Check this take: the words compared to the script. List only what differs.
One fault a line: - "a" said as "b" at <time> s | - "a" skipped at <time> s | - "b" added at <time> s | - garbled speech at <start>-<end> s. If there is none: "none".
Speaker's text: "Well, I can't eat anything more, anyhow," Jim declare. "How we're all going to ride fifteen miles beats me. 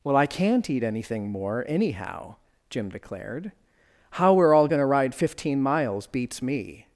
- "declare" said as "declared" at 2.9 s